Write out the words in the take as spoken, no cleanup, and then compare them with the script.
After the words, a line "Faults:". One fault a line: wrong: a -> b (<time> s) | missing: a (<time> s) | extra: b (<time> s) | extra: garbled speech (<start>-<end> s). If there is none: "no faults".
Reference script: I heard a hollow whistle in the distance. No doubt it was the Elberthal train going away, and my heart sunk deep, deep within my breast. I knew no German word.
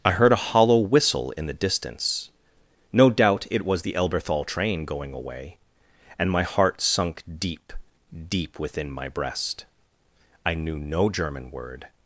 I heard a hollow whistle in the distance. No doubt it was the Elberthal train going away, and my heart sunk deep, deep within my breast. I knew no German word.
Faults:
no faults